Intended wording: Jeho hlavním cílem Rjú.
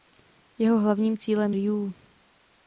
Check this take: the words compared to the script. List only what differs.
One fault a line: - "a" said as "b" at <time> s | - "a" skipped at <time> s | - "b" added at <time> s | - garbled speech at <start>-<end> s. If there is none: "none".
none